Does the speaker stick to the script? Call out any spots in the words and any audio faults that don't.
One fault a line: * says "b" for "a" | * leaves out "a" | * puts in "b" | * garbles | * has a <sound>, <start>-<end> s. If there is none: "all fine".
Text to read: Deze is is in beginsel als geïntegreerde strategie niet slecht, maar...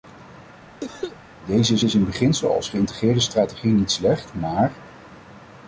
* has a cough, 0.8-1.2 s